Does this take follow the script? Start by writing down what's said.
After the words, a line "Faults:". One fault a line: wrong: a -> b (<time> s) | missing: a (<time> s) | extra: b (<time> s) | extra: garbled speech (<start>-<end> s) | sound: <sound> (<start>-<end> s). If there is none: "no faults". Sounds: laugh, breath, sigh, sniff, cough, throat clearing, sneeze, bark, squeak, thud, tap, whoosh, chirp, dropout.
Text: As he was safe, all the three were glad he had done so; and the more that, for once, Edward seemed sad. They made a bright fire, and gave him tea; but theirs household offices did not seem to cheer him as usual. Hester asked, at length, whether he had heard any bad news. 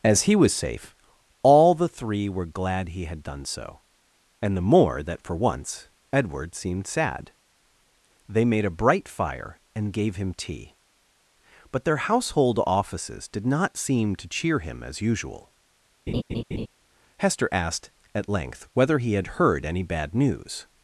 As he was safe, all the three were glad he had done so; and the more that, for once, Edward seemed sad. They made a bright fire, and gave him tea; but their household offices did not seem to cheer him as usual. Hester asked, at length, whether he had heard any bad news.
Faults:
wrong: theirs -> their (11.8 s)
sound: laugh (16.1-16.7 s)